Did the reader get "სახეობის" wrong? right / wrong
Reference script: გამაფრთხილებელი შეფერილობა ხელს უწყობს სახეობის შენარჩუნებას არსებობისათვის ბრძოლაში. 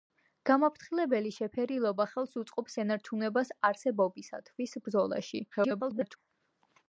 wrong